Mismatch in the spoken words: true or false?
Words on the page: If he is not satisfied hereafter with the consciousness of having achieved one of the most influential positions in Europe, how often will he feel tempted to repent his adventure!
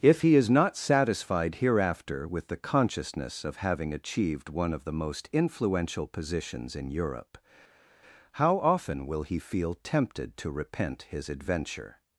false